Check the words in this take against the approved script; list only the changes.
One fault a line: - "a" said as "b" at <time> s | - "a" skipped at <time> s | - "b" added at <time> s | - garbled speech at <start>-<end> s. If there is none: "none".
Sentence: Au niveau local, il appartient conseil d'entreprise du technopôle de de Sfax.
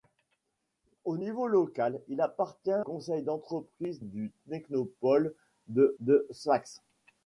none